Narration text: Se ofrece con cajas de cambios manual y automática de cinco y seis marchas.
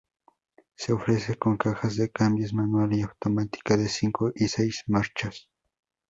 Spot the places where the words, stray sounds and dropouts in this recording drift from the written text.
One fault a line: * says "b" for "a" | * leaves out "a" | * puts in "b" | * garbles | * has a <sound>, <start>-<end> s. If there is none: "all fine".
all fine